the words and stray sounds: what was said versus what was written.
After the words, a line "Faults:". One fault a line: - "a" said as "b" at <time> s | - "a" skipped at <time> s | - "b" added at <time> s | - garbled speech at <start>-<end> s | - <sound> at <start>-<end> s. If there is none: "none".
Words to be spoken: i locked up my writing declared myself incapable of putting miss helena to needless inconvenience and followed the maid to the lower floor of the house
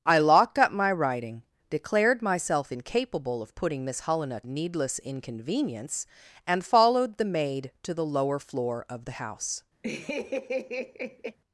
i locked up my writing declared myself incapable of putting miss helena needless inconvenience and followed the maid to the lower floor of the house
Faults:
- "to" skipped at 4.4 s
- laugh at 9.8-11.4 s